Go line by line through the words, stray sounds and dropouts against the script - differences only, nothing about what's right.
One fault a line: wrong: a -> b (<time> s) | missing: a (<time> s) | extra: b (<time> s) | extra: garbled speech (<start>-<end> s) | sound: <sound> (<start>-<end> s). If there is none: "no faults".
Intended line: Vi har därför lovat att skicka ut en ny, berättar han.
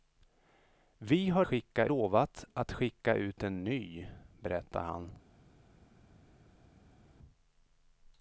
wrong: därför -> skicka (1.4 s)